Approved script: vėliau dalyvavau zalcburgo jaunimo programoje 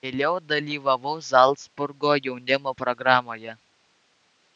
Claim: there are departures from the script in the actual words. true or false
false